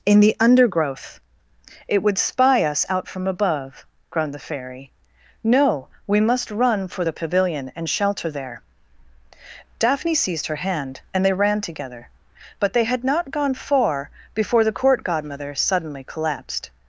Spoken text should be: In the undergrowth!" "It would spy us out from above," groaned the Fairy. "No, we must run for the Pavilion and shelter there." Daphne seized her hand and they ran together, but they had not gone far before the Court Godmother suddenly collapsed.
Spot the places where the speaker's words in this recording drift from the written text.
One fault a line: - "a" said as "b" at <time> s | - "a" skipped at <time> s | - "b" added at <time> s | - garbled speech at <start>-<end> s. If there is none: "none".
none